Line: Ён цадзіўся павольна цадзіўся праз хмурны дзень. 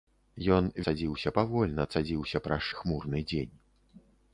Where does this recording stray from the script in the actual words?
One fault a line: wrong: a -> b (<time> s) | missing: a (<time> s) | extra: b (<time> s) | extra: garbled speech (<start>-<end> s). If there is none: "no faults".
no faults